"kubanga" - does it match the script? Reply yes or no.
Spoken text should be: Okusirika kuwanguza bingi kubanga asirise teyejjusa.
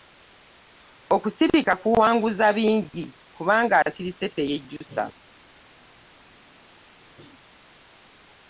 yes